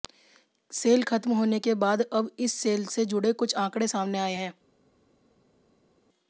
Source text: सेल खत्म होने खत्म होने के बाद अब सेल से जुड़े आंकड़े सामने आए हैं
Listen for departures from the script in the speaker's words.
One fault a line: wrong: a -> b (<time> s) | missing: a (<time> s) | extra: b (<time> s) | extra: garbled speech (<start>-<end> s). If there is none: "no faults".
missing: खत्म होने (1.6 s)
extra: इस (2.4 s)
extra: कुछ (3.3 s)